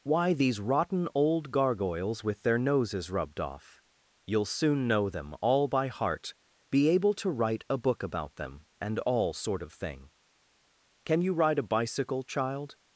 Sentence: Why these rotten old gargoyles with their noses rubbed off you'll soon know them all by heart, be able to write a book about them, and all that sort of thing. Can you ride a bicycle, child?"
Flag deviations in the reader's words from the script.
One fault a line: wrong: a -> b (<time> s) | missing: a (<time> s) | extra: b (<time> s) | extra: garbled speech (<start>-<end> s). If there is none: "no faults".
missing: that (9.3 s)